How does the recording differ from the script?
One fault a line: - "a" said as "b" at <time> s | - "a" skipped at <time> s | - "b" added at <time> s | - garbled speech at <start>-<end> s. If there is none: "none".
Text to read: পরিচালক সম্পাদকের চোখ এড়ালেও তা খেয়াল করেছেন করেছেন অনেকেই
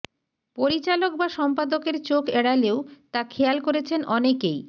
- "বা" added at 1.1 s
- "করেছেন" skipped at 4.0 s